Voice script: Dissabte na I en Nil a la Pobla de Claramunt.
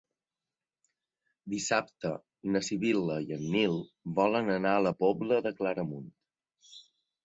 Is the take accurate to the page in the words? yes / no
no